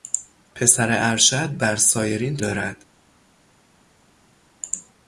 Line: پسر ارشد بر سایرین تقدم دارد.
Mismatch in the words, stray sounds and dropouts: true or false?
true